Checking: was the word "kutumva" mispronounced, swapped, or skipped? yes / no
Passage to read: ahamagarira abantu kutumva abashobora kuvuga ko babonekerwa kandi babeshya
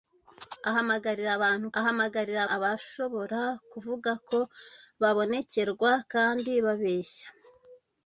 yes